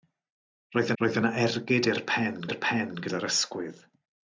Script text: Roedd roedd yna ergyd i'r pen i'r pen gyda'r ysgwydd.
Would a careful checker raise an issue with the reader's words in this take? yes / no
no